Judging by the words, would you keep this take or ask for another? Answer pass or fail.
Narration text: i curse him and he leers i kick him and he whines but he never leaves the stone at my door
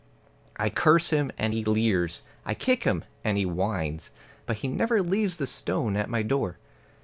pass